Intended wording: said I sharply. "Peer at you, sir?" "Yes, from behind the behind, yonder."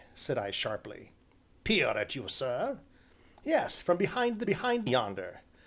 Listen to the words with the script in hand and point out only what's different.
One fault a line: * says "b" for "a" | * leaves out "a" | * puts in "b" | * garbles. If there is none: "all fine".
all fine